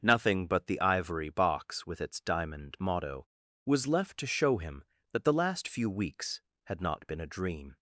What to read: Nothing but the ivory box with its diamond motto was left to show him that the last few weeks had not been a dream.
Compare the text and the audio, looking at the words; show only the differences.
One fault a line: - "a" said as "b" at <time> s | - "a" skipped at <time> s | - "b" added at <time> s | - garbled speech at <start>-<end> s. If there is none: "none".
none